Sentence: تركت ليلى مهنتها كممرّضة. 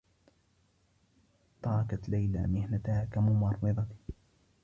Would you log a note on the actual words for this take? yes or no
no